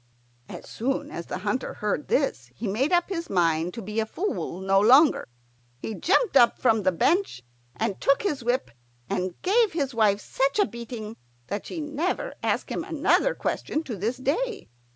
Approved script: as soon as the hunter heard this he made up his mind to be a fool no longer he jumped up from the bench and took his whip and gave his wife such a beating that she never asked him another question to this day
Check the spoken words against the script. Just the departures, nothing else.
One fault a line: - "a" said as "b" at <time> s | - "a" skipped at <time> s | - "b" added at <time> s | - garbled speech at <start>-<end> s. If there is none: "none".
none